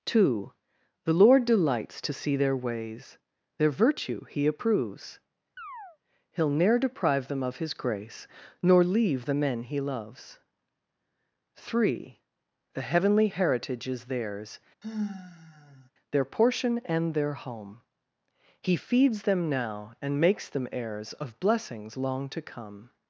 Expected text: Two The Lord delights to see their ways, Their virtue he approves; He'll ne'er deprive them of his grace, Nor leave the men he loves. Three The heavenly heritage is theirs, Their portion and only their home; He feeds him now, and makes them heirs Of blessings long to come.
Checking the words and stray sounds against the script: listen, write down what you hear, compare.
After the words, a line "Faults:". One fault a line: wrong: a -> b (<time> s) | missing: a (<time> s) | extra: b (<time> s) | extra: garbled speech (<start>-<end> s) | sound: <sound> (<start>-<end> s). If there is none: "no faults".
Two The Lord delights to see their ways, Their virtue he approves; He'll ne'er deprive them of his grace, Nor leave the men he loves. Three The heavenly heritage is theirs, Their portion and their home; He feeds them now, and makes them heirs Of blessings long to come.
Faults:
sound: chirp (5.6-6.0 s)
sound: sigh (14.8-15.9 s)
missing: only (17.1 s)
wrong: him -> them (19.2 s)